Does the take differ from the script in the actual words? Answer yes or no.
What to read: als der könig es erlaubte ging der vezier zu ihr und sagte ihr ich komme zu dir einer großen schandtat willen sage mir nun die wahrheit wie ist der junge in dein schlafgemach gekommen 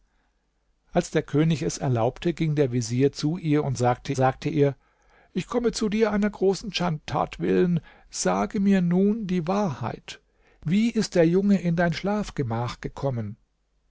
yes